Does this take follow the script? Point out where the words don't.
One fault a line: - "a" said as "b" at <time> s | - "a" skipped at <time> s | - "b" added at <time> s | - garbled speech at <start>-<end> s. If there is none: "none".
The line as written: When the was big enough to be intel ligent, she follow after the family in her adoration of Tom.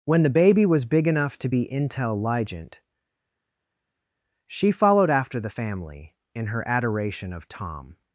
- "baby" added at 0.3 s
- "follow" said as "followed" at 4.7 s